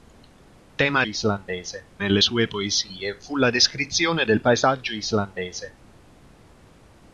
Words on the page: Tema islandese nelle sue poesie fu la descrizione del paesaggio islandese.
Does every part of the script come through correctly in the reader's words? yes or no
yes